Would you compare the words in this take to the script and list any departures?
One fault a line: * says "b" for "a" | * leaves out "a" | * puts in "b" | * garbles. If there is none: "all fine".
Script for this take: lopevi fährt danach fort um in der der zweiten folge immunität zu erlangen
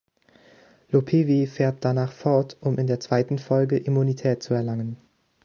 * leaves out "der"